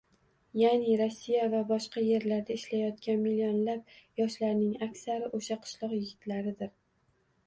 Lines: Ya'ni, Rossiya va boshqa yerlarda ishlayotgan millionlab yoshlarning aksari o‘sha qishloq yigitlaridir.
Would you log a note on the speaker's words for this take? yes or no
no